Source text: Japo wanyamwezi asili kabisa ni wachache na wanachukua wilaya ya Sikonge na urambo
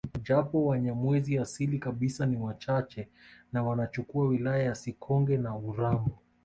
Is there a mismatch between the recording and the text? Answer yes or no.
no